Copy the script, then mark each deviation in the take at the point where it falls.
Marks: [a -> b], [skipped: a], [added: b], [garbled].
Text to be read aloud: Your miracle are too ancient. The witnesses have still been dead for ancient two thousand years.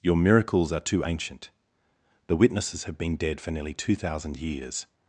Your [miracle -> miracles] are too ancient. The witnesses have [skipped: still] been dead for [ancient -> nearly] two thousand years.